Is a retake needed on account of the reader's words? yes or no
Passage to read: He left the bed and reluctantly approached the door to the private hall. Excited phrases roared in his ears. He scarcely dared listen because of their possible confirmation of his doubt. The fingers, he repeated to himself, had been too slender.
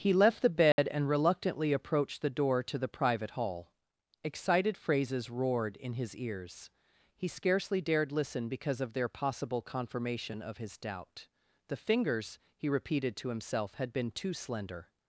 no